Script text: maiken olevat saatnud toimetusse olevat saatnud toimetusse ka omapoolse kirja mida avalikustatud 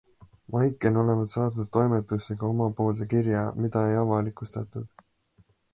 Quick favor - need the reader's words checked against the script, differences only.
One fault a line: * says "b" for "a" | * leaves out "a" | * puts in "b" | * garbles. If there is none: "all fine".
* leaves out "olevat saatnud toimetusse"
* puts in "ei"